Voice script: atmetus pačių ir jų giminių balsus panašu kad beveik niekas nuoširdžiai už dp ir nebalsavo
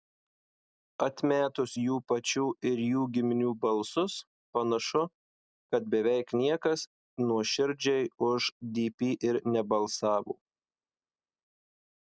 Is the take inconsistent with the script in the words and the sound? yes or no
yes